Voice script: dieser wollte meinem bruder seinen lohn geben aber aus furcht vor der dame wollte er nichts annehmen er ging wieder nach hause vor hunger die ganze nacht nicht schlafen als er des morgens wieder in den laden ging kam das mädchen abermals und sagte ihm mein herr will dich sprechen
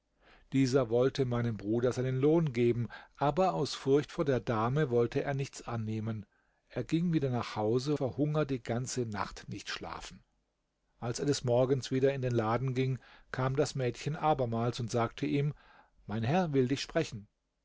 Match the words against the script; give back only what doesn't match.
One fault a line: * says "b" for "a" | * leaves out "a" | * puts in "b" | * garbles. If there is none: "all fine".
all fine